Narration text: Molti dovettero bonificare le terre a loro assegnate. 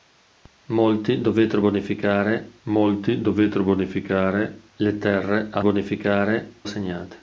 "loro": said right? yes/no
no